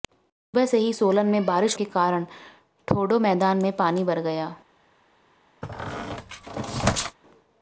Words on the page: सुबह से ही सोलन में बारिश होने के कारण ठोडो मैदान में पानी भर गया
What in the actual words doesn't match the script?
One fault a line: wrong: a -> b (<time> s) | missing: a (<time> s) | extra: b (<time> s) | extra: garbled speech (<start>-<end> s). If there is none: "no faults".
missing: होने (1.8 s)